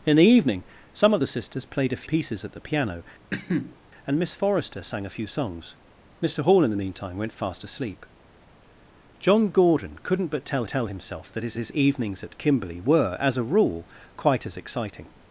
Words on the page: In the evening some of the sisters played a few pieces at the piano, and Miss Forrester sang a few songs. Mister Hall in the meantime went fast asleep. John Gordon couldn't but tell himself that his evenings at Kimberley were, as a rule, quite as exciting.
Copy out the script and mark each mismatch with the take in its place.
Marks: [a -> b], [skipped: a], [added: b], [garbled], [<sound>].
In the evening some of the sisters played a [skipped: few] pieces at the piano, [cough] and Miss Forrester sang a few songs. Mister Hall in the meantime went fast asleep. John Gordon couldn't but tell [added: tell] himself that his [added: his] evenings at Kimberley were, as a rule, quite as exciting.